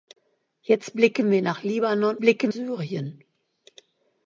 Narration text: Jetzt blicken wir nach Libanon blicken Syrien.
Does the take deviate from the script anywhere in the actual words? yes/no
no